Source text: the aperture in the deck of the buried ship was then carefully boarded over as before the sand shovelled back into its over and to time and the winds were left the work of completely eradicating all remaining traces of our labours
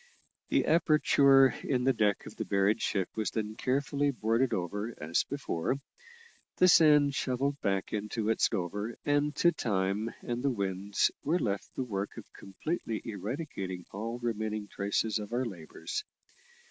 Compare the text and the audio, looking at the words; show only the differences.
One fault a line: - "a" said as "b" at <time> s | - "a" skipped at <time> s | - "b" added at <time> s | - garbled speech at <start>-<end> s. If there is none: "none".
none